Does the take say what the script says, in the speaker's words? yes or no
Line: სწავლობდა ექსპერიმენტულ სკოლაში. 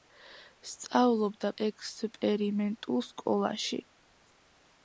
yes